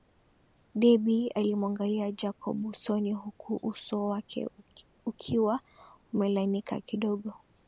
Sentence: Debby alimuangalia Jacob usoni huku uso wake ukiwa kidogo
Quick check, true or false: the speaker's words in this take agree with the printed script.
false